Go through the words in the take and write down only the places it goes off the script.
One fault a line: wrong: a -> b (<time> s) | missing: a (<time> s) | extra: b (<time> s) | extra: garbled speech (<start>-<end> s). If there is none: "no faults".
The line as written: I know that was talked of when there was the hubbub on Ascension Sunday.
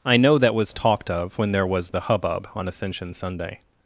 no faults